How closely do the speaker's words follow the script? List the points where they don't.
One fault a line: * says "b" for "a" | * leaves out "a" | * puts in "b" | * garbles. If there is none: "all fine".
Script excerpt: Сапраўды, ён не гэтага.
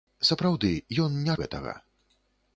all fine